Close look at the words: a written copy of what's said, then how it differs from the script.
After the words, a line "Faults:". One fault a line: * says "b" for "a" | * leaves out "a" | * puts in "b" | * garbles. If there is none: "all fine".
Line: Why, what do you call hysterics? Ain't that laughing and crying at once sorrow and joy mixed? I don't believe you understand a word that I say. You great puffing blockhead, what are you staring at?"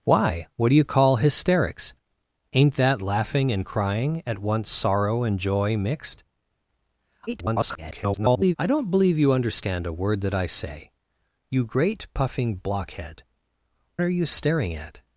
Why, what do you call hysterics? Ain't that laughing and crying at once sorrow and joy mixed? [garbled] I don't believe you understand a word that I say. You great puffing blockhead, are you staring at?"
Faults:
* garbles
* leaves out "what"